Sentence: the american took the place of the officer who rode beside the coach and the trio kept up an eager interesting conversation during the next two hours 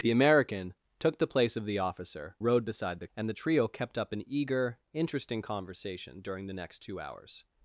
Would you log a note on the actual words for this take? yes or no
yes